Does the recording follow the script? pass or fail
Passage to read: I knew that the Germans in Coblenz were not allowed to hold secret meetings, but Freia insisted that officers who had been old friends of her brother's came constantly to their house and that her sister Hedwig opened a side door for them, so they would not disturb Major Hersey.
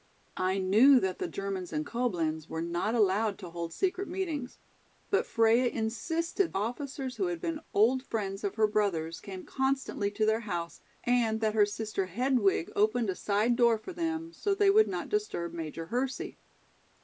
fail